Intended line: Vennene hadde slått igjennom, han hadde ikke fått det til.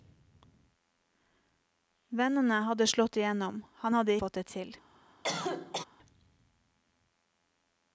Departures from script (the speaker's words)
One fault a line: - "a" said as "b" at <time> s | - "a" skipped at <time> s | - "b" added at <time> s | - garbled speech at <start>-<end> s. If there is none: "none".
- "ikke" skipped at 4.2 s